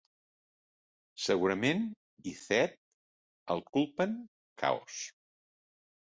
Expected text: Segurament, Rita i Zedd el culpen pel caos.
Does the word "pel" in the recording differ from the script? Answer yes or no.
yes